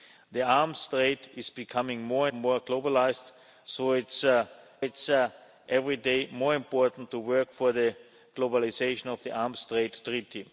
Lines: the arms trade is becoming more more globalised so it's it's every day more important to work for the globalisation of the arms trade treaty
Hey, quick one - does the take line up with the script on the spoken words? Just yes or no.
yes